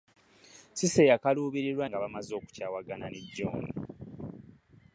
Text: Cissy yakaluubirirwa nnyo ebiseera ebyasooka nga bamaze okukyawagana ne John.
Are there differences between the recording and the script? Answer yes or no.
yes